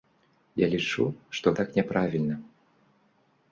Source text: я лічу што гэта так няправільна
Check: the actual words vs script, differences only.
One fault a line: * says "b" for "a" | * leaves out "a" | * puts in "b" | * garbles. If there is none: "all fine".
* leaves out "гэта"